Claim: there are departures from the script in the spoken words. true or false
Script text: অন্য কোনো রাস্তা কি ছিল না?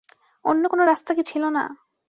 false